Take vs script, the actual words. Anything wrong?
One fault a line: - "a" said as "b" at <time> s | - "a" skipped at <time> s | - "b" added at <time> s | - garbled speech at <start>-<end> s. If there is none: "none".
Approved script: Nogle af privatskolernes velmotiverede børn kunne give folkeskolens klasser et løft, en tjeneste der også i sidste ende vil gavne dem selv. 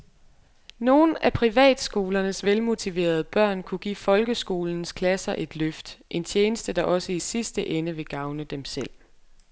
none